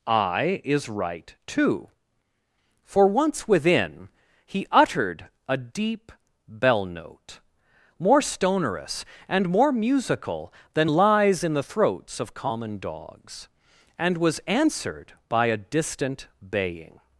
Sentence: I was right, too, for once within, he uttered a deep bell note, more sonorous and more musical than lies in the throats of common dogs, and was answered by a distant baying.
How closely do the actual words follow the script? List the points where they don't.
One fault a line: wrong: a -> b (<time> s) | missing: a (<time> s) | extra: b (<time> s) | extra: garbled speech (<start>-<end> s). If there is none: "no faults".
wrong: was -> is (0.6 s)